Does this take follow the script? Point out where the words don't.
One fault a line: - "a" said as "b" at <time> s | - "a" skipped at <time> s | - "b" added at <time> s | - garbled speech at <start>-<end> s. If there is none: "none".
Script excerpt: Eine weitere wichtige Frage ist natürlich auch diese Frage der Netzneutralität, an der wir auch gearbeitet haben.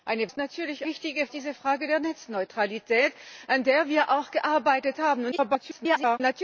- "weitere wichtige Frage" skipped at 0.3 s
- "auch" said as "wichtige" at 0.9 s
- garbled speech at 5.3-6.2 s